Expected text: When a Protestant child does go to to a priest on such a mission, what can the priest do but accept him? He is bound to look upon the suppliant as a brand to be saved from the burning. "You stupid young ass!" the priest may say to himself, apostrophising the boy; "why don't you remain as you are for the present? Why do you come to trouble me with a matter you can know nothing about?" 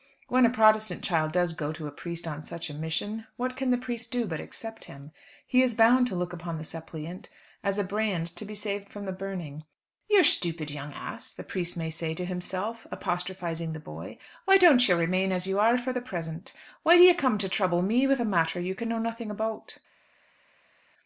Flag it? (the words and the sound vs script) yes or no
yes